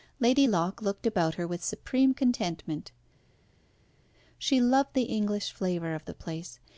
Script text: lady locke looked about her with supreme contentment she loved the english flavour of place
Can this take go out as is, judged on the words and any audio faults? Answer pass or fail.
fail